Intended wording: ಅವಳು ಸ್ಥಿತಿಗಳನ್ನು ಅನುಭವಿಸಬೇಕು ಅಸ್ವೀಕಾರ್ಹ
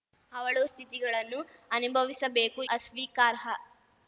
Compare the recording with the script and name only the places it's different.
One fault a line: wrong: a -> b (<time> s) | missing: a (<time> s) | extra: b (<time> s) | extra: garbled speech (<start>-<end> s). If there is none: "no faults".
no faults